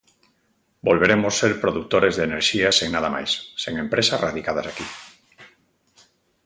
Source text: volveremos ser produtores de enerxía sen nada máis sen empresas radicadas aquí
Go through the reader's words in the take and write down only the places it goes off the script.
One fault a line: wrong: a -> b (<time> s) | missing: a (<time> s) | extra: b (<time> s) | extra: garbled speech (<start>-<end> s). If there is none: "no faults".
no faults